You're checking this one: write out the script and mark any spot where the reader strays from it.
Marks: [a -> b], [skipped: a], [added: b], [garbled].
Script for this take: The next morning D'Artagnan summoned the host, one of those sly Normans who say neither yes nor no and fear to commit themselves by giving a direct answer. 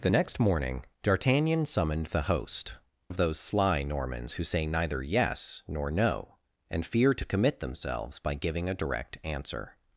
The next morning D'Artagnan summoned the host, [skipped: one] of those sly Normans who say neither yes nor no and fear to commit themselves by giving a direct answer.